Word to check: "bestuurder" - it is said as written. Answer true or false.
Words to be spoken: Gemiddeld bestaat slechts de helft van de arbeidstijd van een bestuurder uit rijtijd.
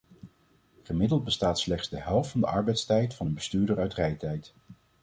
true